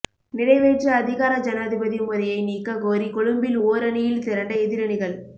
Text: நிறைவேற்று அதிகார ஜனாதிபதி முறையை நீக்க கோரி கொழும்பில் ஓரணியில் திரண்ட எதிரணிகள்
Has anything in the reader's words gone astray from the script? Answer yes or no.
no